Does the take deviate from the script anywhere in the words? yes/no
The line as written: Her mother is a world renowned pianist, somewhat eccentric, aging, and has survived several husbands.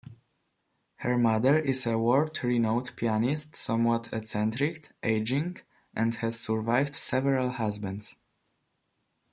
no